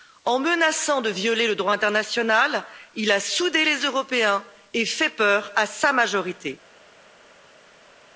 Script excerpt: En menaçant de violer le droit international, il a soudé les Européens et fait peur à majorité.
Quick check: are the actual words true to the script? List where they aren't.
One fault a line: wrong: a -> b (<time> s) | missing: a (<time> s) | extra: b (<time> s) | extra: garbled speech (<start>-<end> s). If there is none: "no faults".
extra: sa (5.7 s)